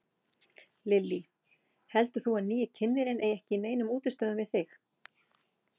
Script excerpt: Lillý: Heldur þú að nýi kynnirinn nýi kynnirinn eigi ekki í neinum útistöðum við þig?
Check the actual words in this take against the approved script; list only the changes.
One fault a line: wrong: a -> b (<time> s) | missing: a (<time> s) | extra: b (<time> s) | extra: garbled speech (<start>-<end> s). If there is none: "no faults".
missing: nýi kynnirinn (3.2 s)